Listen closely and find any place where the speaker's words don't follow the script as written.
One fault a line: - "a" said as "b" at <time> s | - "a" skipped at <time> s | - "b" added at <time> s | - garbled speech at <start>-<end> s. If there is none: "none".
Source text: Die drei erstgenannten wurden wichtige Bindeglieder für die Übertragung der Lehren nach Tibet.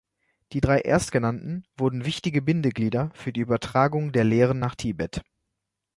none